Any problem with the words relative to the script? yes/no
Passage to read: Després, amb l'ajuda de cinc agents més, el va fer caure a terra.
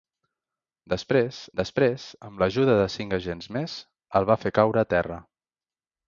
yes